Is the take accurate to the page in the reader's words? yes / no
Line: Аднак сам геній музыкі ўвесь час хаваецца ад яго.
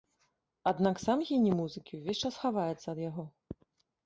yes